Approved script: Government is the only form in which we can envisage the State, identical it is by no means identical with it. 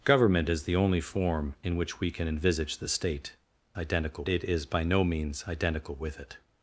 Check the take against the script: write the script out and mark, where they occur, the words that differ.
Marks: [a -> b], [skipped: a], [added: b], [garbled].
Government is the only form in which we can envisage the State, identical it is by no means identical with it.